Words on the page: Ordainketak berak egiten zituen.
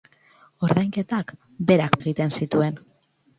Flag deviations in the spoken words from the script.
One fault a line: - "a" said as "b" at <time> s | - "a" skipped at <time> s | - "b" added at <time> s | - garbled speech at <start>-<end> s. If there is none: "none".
none